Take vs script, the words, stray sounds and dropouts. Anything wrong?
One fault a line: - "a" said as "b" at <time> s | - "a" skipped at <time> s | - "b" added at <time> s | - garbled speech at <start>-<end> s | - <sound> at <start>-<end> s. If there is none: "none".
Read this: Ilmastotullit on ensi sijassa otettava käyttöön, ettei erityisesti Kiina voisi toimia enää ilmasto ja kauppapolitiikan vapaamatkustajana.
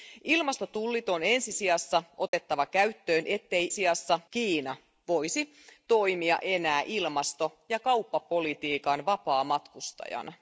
- dropout at 2.3-2.3 s
- "erityisesti" said as "sijassa" at 3.7 s